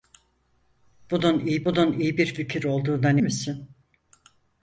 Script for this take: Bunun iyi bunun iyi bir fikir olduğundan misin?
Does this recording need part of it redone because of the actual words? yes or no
no